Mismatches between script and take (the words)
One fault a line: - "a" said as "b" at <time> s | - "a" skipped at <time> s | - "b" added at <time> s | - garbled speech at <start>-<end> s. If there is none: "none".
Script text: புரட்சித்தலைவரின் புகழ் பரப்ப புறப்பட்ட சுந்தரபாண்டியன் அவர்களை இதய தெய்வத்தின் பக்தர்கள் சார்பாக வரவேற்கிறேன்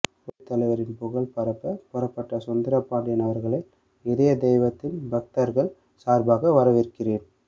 none